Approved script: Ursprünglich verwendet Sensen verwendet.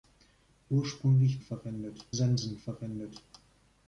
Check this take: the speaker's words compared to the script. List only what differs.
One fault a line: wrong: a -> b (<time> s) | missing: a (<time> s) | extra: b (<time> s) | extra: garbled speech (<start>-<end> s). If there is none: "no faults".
no faults